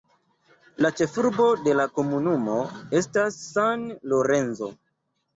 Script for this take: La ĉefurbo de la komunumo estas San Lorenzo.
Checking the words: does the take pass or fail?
pass